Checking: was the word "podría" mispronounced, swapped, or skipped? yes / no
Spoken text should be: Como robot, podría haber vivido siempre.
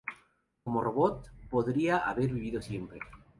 no